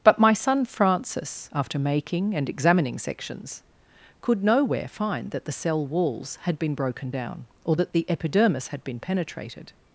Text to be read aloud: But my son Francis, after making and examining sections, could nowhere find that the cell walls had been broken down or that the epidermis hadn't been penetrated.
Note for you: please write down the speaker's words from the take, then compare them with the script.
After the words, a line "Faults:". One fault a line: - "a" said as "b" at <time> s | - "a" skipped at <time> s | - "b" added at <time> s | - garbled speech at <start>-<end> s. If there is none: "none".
But my son Francis, after making and examining sections, could nowhere find that the cell walls had been broken down or that the epidermis had been penetrated.
Faults:
- "hadn't" said as "had" at 8.7 s